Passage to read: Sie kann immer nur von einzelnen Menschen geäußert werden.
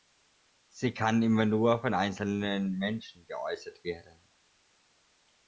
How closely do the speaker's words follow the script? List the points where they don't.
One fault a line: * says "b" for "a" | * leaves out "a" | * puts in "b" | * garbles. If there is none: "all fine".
all fine